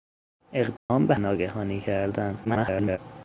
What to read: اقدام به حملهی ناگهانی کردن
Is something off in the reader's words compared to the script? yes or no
yes